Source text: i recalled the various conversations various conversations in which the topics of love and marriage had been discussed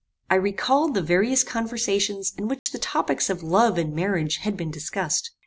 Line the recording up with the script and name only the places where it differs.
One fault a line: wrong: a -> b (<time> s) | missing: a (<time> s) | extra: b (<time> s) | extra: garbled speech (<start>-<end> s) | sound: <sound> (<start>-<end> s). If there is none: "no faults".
missing: various conversations (2.3 s)
sound: dropout (2.6-2.7 s)